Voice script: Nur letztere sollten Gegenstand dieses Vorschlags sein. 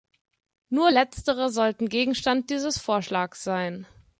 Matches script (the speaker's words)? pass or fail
pass